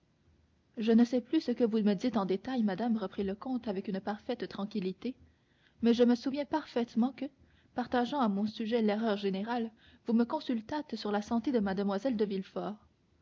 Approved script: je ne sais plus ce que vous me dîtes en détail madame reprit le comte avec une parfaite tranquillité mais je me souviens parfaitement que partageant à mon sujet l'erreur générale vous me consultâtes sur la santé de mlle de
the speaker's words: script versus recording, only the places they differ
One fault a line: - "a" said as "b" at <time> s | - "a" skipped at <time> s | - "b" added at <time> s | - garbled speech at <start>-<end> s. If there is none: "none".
none